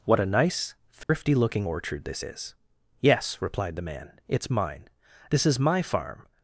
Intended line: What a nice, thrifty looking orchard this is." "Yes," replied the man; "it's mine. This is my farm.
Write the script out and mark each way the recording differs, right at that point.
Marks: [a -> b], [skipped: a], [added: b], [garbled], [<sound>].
What a nice, thrifty [dropout] looking orchard this is." "Yes," replied the man; "it's mine. This is my farm.